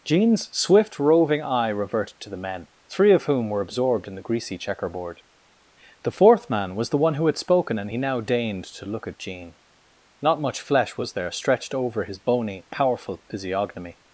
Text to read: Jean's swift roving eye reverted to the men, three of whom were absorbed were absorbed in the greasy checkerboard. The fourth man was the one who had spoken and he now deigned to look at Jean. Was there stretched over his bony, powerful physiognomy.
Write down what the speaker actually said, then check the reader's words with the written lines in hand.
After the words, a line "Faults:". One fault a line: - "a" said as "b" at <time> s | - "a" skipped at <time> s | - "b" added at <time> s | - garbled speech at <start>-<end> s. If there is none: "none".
Jean's swift roving eye reverted to the men, three of whom were absorbed in the greasy checkerboard. The fourth man was the one who had spoken and he now deigned to look at Jean. Not much flesh was there stretched over his bony, powerful physiognomy.
Faults:
- "were absorbed" skipped at 4.1 s
- "Not much flesh" added at 10.2 s